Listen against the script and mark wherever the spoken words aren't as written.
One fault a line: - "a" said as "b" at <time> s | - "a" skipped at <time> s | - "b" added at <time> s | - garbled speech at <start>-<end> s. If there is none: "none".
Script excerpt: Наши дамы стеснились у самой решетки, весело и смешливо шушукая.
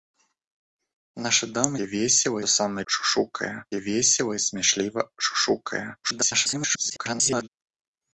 - "стеснились" said as "весело" at 1.8 s
- "решетки" said as "шушукая" at 2.8 s
- garbled speech at 6.0-7.5 s